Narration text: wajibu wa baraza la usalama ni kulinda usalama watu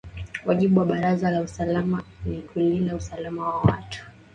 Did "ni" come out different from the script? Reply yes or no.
no